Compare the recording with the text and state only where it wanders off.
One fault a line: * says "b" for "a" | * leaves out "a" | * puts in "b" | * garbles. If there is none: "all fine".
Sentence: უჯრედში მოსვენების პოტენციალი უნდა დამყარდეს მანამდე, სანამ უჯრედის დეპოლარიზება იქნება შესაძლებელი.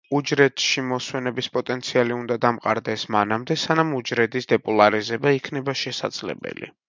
all fine